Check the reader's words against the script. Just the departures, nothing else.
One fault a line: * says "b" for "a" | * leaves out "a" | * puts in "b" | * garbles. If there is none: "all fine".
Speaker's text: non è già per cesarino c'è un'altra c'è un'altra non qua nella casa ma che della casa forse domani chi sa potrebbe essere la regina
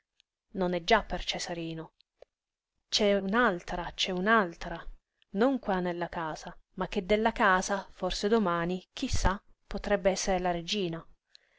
all fine